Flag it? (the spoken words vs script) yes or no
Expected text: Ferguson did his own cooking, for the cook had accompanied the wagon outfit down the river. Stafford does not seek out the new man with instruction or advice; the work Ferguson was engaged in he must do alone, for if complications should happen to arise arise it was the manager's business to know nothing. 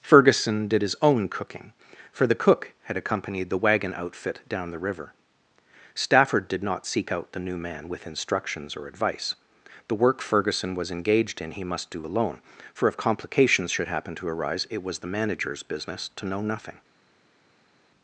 yes